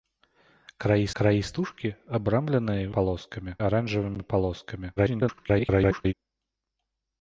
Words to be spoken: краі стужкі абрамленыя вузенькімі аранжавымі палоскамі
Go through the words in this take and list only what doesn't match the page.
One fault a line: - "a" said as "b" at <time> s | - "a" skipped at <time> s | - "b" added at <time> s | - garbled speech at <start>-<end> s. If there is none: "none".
- "краі" added at 1.2 s
- "вузенькімі" said as "палоскамі" at 3.0 s
- garbled speech at 5.0-6.1 s